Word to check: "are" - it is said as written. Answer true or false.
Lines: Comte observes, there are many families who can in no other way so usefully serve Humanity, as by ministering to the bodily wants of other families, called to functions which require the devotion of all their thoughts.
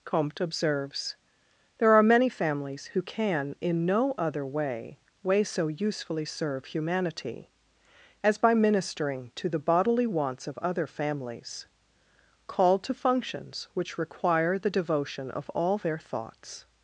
true